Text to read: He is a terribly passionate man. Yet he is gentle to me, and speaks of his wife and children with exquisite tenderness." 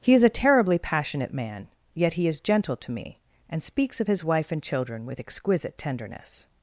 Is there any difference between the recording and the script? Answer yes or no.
no